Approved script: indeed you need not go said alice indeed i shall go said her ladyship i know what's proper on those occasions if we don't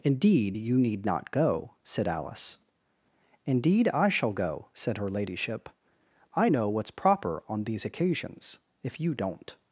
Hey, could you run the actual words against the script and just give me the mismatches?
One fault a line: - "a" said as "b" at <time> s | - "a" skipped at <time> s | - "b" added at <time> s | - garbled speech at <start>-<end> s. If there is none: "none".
- "those" said as "these" at 7.6 s
- "we" said as "you" at 9.0 s